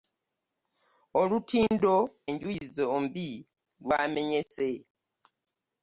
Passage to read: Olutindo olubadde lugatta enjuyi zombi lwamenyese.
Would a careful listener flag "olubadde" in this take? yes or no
yes